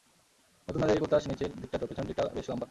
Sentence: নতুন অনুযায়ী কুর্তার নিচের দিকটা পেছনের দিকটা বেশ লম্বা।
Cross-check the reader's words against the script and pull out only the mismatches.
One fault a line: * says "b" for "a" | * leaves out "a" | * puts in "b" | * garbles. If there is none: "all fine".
all fine